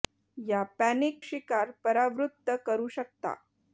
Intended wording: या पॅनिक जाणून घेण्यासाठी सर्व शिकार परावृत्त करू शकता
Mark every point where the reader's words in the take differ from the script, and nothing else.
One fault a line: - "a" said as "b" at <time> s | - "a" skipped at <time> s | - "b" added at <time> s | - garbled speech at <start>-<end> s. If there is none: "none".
- "जाणून घेण्यासाठी सर्व" skipped at 1.2 s